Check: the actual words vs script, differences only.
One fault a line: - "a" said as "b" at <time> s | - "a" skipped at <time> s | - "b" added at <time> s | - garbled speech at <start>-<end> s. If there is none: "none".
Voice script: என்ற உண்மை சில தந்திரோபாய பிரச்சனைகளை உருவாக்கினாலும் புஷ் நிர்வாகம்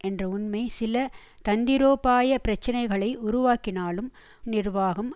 - "புஷ்" skipped at 4.1 s